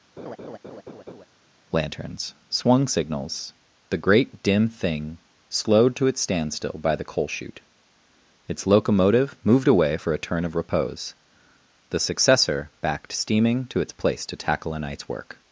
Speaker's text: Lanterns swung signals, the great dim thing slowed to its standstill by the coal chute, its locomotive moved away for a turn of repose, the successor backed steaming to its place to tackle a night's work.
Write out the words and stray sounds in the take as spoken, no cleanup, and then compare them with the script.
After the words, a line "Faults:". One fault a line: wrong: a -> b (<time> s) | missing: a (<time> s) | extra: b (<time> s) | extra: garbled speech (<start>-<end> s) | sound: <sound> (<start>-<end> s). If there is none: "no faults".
Lanterns swung signals, the great dim thing slowed to its standstill by the coal chute, its locomotive moved away for a turn of repose, the successor backed steaming to its place to tackle a night's work.
Faults:
sound: laugh (0.2-1.3 s)